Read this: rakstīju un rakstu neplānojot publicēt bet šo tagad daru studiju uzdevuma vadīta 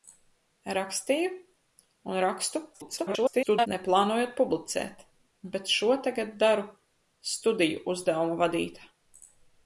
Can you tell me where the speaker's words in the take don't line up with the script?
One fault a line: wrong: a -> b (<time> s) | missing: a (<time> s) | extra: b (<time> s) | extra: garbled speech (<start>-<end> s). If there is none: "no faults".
extra: garbled speech (2.7-3.7 s)